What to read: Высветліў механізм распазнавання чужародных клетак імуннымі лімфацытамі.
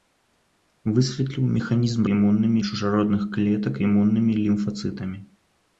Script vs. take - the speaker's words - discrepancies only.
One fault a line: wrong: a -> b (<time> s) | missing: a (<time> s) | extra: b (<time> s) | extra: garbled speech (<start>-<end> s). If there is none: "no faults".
wrong: распазнавання -> імуннымі (2.1 s)